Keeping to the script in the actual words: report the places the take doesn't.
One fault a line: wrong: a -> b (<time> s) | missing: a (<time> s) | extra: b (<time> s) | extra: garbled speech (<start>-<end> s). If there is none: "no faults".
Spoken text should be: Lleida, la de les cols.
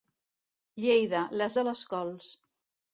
no faults